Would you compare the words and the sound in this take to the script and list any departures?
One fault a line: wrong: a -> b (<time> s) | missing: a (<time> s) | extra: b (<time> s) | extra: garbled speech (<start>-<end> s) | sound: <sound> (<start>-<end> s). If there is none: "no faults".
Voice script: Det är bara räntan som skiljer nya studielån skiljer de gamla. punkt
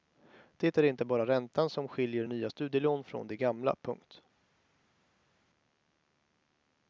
extra: inte (0.8 s)
wrong: skiljer -> från (3.0 s)